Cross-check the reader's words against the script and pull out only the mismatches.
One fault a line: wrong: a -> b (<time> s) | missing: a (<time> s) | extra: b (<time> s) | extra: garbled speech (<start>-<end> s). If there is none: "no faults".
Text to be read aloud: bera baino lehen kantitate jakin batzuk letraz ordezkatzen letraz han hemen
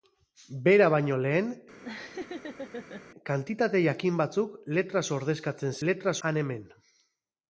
no faults